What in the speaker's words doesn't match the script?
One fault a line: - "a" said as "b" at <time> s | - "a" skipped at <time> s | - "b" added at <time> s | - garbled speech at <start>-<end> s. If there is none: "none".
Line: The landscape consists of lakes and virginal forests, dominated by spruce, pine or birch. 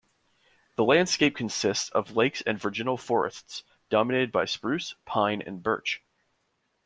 - "or" said as "and" at 5.4 s